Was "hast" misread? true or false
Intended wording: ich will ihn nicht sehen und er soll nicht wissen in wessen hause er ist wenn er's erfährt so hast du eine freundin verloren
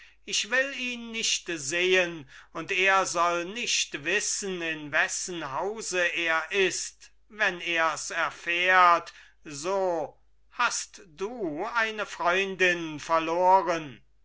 false